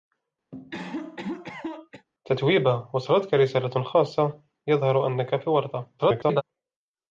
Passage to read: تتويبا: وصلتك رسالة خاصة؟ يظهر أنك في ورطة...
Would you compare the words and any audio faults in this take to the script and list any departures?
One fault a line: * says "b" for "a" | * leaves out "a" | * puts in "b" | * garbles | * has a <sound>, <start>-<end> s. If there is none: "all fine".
* has a cough, 0.5-2.1 s
* garbles